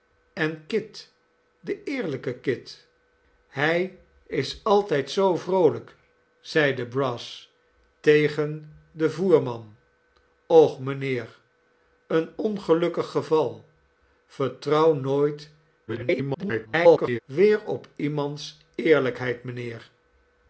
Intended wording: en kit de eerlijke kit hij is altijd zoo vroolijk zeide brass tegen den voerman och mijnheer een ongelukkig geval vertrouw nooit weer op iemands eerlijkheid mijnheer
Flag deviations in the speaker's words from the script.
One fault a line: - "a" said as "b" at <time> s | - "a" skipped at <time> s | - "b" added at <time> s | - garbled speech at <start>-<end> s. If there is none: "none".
- garbled speech at 15.9-17.2 s